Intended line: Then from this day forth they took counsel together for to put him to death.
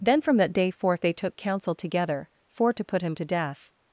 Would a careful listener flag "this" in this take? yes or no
yes